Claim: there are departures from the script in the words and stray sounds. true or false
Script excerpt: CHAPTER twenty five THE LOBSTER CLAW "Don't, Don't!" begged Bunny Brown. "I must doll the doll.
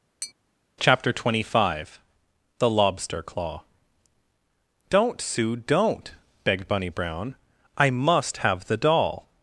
true